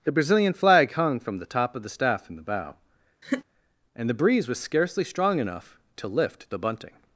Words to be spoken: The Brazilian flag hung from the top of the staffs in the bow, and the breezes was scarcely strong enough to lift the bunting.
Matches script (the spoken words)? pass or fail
fail